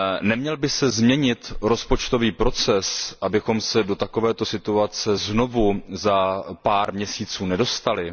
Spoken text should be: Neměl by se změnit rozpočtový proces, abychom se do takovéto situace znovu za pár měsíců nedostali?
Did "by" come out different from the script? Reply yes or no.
no